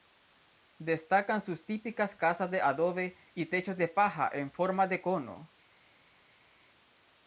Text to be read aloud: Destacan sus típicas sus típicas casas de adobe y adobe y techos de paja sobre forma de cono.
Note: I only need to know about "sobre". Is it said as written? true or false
false